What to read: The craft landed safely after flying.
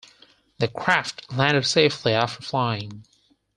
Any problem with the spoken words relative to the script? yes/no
no